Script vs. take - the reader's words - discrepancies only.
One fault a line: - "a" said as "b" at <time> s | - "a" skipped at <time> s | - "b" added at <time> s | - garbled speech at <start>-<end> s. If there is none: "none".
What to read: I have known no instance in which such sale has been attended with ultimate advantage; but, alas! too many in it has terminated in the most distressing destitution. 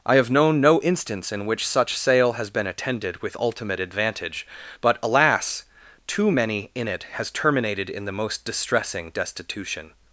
none